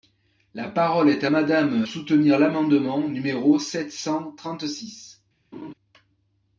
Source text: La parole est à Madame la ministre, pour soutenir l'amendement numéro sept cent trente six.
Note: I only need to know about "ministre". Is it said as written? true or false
false